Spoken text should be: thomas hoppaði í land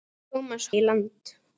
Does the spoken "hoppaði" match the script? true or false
false